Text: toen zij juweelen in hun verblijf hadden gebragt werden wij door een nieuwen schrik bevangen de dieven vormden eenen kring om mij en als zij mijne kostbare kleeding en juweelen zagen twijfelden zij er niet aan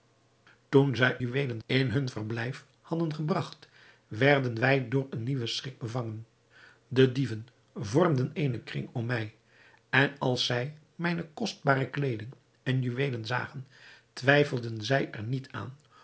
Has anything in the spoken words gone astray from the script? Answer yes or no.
no